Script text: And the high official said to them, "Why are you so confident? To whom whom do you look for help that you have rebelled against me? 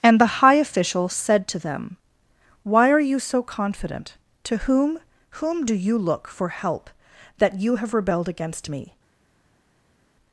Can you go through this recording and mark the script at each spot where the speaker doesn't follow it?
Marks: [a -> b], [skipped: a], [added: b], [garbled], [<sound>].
And the high official said to them, "Why are you so confident? To whom whom do you look for help that you have rebelled against me?